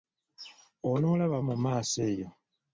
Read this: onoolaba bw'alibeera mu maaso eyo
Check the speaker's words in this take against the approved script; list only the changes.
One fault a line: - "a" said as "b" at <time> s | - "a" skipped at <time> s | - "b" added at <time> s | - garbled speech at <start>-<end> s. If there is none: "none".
- "bw'alibeera" skipped at 1.4 s